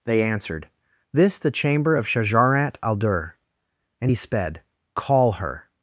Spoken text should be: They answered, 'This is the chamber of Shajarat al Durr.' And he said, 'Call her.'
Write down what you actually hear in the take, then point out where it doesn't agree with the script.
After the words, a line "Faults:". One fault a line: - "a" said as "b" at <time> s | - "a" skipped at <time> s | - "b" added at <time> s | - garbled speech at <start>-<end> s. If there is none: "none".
They answered, 'This the chamber of Shajarat al Durr.' And he sped, 'Call her.'
Faults:
- "is" skipped at 1.4 s
- "said" said as "sped" at 4.1 s